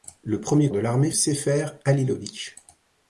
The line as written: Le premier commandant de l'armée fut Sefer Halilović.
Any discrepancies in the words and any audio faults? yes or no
yes